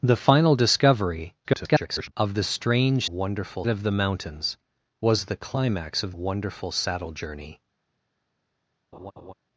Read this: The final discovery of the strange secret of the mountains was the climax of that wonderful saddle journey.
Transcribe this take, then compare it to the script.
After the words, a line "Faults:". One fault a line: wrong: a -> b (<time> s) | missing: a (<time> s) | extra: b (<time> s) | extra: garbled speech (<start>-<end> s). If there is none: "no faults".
The final discovery [garbled] of the strange wonderful of the mountains was the climax of wonderful saddle journey.
Faults:
extra: garbled speech (1.4-2.1 s)
wrong: secret -> wonderful (3.1 s)
missing: that (6.1 s)